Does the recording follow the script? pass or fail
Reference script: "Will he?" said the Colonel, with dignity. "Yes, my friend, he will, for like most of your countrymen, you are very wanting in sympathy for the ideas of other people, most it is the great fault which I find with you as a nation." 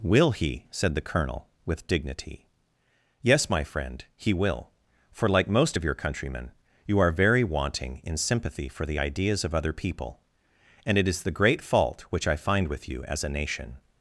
fail